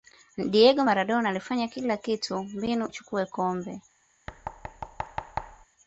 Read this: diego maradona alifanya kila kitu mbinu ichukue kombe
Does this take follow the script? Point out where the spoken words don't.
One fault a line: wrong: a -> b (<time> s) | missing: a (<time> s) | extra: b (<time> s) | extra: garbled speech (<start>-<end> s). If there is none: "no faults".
no faults